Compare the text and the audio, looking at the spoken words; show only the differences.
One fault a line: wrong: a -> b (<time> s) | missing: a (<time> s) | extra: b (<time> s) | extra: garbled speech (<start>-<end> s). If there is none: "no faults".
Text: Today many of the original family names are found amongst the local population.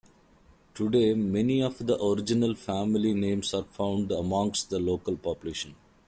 no faults